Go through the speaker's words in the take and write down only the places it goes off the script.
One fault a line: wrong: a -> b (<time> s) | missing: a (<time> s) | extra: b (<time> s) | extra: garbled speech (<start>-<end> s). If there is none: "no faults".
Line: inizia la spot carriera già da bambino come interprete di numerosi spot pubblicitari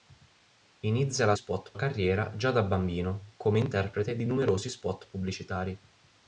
no faults